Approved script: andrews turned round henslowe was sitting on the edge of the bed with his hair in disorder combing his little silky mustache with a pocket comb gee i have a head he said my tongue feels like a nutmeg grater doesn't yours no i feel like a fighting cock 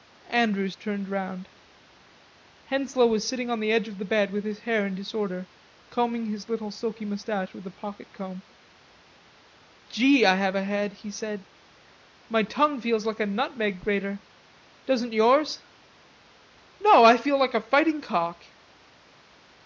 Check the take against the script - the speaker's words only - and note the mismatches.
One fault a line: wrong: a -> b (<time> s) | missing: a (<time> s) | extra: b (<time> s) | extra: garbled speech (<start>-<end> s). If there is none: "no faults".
no faults